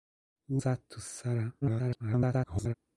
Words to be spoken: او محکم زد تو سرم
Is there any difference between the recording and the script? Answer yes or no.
yes